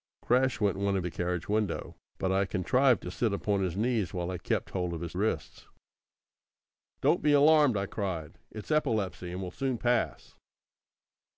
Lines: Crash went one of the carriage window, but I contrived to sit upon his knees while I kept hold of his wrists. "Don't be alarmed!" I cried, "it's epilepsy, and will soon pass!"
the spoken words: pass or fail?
pass